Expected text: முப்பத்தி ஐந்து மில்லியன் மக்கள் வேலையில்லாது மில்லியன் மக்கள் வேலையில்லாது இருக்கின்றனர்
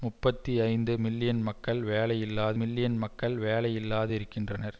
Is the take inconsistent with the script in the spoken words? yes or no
no